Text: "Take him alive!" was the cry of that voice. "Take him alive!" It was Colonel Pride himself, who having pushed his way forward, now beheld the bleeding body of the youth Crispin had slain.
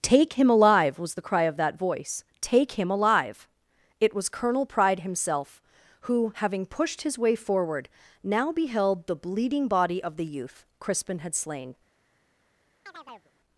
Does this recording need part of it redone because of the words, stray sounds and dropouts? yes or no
yes